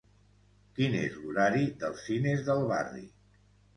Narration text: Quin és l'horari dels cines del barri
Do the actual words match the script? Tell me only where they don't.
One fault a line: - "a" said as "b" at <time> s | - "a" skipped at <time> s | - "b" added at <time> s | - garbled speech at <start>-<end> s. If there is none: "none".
none